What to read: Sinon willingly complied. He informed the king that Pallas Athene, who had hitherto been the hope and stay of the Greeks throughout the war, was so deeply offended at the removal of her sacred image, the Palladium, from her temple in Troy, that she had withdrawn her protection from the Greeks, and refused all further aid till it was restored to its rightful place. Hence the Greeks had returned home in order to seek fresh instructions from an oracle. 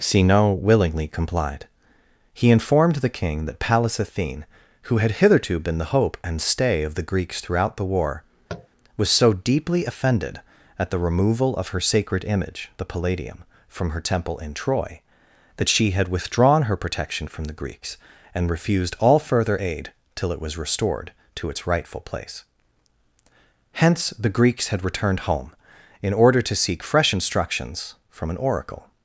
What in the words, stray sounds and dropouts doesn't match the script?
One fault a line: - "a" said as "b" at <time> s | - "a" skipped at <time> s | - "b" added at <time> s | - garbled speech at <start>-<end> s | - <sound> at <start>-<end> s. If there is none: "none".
- tap at 8.5-8.7 s